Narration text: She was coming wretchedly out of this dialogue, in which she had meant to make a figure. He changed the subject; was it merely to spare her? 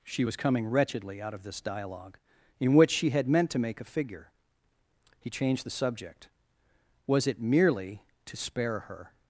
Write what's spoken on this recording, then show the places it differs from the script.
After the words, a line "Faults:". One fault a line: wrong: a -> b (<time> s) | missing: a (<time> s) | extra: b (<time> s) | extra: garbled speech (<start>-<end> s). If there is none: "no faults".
She was coming wretchedly out of this dialogue, in which she had meant to make a figure. He changed the subject; was it merely to spare her?
Faults:
no faults